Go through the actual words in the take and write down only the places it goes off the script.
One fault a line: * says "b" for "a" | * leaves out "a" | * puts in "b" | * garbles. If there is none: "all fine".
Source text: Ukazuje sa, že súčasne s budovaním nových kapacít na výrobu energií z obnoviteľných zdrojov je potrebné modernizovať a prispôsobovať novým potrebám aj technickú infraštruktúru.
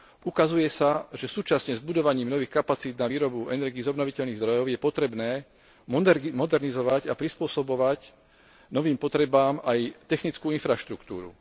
all fine